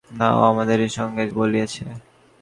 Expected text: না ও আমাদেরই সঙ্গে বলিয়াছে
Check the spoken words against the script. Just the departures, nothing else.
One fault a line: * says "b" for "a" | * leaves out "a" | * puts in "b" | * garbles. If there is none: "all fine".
all fine